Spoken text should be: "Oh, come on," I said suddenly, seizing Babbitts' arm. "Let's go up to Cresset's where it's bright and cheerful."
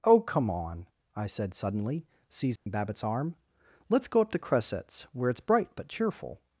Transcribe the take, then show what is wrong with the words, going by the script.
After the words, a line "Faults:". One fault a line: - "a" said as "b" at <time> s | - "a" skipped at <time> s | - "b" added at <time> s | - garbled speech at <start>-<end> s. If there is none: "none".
"Oh, come on," I said suddenly, seizing Babbitts' arm. "Let's go up to Cresset's where it's bright but cheerful."
Faults:
- "and" said as "but" at 5.8 s